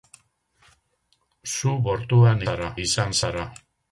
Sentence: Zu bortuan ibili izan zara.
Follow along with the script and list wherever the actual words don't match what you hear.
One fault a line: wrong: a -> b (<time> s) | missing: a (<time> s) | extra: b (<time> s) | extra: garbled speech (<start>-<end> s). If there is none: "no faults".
wrong: ibili -> zara (2.4 s)